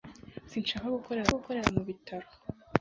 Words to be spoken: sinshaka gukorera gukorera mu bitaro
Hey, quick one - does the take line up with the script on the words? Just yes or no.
yes